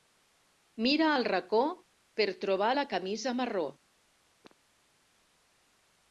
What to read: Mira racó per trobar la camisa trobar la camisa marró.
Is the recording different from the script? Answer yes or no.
yes